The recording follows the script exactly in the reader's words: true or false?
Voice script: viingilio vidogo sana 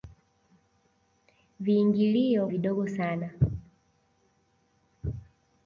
true